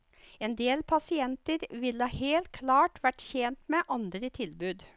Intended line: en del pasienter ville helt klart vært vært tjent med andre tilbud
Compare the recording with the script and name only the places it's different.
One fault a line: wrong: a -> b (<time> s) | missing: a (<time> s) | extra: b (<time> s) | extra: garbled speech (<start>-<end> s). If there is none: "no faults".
missing: vært (3.2 s)